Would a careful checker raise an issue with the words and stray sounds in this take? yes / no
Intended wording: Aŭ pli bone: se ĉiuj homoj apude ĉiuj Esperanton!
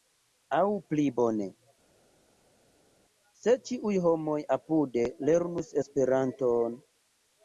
yes